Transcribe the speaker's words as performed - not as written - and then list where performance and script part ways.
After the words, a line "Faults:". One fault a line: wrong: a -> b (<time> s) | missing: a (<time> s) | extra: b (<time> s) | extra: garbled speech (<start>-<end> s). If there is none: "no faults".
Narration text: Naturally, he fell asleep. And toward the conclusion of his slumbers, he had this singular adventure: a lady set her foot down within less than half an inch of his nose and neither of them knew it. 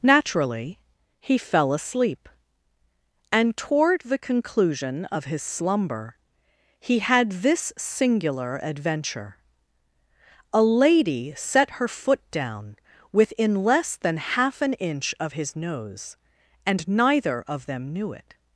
Naturally, he fell asleep. And toward the conclusion of his slumber, he had this singular adventure: a lady set her foot down within less than half an inch of his nose and neither of them knew it.
Faults:
wrong: slumbers -> slumber (5.4 s)